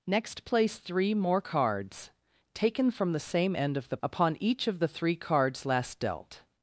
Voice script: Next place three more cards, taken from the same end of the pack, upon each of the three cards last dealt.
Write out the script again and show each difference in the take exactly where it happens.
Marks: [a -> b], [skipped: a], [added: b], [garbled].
Next place three more cards, taken from the same end of the [skipped: pack,] upon each of the three cards last dealt.